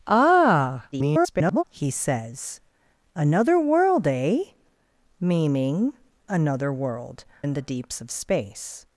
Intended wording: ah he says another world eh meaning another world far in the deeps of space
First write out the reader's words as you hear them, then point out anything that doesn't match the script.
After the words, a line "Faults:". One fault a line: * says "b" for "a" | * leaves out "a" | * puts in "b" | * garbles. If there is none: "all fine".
ah [garbled] he says another world eh meaning another world in the deeps of space
Faults:
* garbles
* leaves out "far"